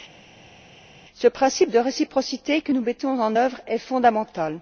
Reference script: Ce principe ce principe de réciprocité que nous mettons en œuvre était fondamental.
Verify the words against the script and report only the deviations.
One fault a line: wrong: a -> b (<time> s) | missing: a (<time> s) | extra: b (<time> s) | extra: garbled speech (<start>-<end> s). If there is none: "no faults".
missing: ce principe (1.7 s)
wrong: était -> est (3.7 s)